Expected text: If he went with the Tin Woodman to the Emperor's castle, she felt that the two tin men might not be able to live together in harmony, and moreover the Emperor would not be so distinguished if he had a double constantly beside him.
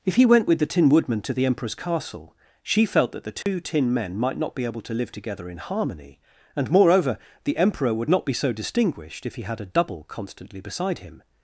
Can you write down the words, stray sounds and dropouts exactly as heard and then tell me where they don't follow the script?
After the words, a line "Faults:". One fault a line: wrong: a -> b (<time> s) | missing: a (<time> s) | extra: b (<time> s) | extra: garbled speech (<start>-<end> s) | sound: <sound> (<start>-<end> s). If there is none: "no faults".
If he went with the Tin Woodman to the Emperor's castle, she felt that the two tin men might not be able to live together in harmony, and moreover the Emperor would not be so distinguished if he had a double constantly beside him.
Faults:
sound: dropout (3.4-3.5 s)